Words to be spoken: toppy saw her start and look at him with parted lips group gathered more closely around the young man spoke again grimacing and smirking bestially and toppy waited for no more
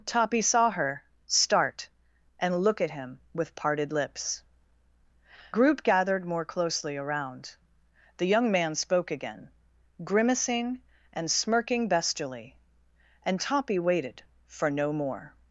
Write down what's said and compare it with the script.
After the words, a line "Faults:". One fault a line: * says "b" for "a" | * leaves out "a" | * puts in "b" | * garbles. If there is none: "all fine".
toppy saw her start and look at him with parted lips group gathered more closely around the young man spoke again grimacing and smirking bestially and toppy waited for no more
Faults:
all fine